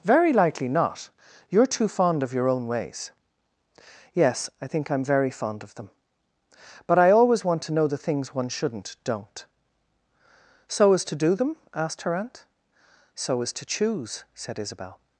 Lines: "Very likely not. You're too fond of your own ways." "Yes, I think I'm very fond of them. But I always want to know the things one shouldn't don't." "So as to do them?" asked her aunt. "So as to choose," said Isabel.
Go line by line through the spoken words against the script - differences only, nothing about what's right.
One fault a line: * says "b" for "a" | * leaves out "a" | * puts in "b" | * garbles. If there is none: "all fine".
all fine